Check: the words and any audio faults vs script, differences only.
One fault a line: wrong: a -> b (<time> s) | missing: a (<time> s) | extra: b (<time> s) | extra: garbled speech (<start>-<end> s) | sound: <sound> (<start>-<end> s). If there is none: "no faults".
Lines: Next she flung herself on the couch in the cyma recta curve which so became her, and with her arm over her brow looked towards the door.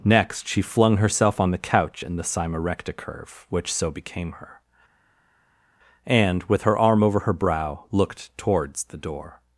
no faults